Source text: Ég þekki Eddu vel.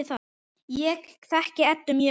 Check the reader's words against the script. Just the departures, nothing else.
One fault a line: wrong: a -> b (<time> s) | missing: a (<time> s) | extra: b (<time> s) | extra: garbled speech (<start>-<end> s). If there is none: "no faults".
extra: mjög (1.9 s)